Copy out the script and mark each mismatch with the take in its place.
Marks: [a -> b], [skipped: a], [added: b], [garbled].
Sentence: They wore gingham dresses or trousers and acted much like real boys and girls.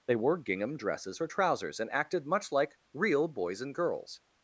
They wore gingham dresses or trousers and acted much like real boys and girls.